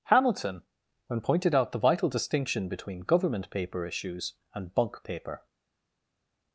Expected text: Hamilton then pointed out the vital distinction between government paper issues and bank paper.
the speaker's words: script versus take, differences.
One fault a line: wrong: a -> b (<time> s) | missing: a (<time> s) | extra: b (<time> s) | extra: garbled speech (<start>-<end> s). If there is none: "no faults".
wrong: then -> when (1.1 s)
wrong: bank -> bunk (4.7 s)